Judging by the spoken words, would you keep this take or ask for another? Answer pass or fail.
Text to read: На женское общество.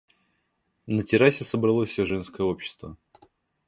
fail